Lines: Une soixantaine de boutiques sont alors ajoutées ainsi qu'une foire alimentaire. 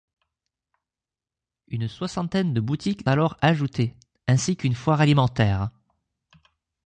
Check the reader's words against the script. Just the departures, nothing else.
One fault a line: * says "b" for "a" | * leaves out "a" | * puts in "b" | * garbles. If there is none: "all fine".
* leaves out "sont"